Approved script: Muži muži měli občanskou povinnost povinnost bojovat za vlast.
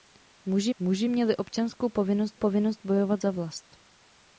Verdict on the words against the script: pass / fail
pass